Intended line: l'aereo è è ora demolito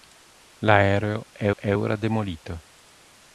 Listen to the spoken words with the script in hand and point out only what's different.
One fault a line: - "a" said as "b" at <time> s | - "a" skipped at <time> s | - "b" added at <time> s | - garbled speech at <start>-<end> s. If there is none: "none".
none